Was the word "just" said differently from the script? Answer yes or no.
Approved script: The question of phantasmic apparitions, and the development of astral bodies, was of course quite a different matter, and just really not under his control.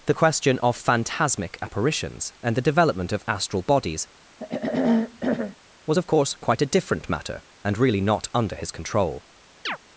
yes